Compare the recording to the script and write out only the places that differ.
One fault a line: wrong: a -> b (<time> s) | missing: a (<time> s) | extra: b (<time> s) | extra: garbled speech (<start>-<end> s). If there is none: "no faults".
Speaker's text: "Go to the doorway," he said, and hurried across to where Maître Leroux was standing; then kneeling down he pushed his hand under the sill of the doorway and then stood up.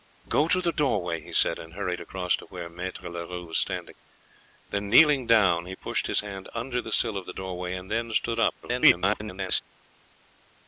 extra: garbled speech (8.6-9.6 s)